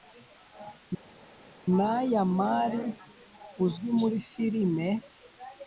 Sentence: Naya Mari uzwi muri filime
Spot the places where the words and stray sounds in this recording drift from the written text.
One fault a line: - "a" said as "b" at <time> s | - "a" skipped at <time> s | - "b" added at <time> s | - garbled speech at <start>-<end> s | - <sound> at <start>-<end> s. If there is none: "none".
none